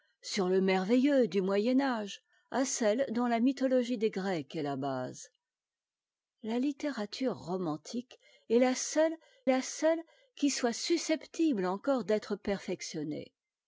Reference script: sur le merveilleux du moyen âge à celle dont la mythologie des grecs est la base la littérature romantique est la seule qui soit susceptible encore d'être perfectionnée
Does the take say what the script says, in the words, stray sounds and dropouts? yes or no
no